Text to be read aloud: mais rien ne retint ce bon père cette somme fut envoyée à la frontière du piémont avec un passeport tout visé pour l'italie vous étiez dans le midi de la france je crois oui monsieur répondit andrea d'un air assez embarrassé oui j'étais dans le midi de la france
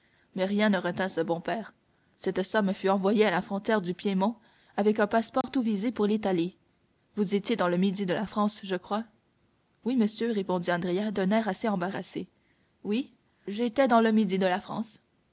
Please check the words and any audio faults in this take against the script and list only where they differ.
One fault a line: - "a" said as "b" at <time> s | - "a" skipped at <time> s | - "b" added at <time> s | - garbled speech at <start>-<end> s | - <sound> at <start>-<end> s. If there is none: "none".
- dropout at 5.4-5.4 s